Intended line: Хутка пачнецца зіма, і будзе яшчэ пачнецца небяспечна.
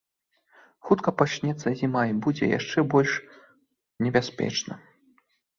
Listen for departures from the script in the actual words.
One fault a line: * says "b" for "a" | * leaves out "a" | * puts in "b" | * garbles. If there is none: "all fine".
* says "больш" for "пачнецца"